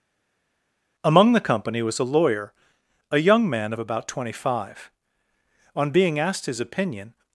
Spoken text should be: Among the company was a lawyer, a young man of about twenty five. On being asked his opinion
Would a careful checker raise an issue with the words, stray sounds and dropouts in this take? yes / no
no